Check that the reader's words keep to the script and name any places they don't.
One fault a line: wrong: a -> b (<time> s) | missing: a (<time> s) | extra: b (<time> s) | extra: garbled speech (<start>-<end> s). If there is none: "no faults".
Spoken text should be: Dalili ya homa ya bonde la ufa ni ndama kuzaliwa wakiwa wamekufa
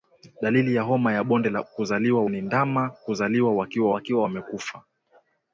wrong: ufa -> kuzaliwa (1.6 s)
extra: wakiwa (3.9 s)